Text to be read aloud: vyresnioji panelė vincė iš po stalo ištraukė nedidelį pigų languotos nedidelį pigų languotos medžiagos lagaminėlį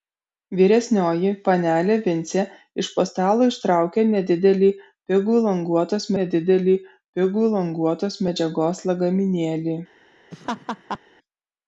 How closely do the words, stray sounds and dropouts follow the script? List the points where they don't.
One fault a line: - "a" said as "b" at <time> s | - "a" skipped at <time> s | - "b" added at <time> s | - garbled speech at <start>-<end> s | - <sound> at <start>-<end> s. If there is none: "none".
- laugh at 10.3-11.0 s